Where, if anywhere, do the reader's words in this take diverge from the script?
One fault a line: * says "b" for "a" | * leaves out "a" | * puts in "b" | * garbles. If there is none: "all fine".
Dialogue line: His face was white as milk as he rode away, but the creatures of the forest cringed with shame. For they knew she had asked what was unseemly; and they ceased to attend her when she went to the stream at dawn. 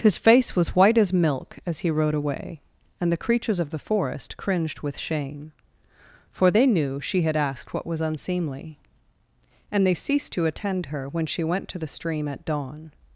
* says "and" for "but"